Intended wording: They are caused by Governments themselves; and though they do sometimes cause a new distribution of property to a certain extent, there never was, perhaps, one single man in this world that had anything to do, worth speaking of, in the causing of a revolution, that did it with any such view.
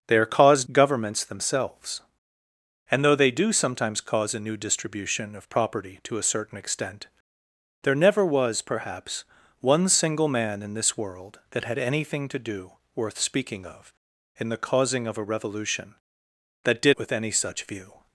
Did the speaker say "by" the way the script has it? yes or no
no